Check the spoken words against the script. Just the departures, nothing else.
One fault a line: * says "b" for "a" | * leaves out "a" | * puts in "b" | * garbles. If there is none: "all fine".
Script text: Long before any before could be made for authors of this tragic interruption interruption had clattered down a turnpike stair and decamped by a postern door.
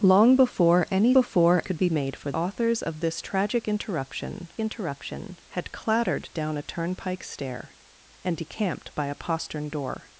all fine